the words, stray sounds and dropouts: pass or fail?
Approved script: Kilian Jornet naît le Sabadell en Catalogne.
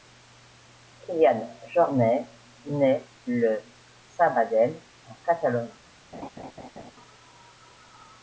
fail